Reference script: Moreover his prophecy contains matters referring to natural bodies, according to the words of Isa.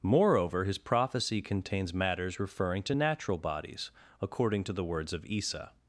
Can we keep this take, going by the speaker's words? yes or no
yes